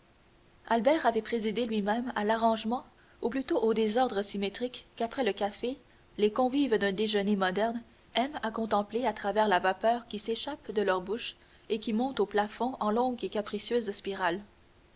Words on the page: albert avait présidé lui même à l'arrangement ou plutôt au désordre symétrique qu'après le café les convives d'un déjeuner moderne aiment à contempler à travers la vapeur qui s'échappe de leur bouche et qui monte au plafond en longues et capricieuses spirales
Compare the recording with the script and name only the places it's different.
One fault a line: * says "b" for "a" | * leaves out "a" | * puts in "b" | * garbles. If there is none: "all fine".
all fine